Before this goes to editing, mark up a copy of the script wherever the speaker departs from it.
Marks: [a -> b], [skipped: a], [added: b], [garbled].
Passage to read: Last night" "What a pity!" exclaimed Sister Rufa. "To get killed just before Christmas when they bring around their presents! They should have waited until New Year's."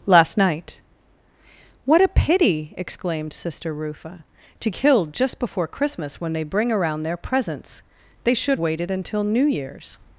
Last night" "What a pity!" exclaimed Sister Rufa. "To [skipped: get] killed just before Christmas when they bring around their presents! They should [skipped: have] waited until New Year's."